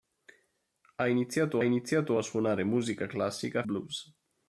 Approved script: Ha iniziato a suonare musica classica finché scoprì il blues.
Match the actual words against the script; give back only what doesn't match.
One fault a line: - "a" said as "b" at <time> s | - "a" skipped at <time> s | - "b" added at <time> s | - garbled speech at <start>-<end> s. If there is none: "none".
- "iniziato" added at 1.6 s
- "finché scoprì il" skipped at 3.6 s